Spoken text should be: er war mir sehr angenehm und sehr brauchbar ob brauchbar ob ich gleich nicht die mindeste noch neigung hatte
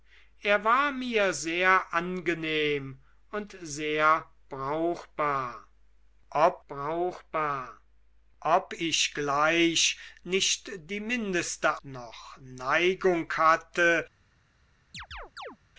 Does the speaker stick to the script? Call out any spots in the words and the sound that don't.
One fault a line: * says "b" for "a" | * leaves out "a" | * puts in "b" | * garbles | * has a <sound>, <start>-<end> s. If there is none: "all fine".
* has a chirp, 14.9-15.6 s